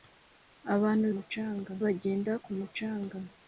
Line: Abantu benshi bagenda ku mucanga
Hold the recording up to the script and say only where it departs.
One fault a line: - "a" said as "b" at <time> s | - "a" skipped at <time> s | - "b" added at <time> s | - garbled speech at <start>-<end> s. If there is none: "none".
- "benshi" said as "mucanga" at 1.1 s